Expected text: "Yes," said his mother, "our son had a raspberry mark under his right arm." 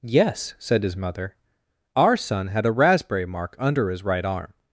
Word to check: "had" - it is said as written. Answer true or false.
true